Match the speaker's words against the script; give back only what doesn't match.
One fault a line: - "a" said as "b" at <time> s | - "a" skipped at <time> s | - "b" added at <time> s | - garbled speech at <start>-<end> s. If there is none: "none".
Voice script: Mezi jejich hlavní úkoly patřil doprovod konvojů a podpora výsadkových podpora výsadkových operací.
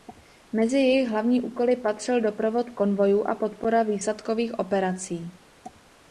- "podpora výsadkových" skipped at 4.6 s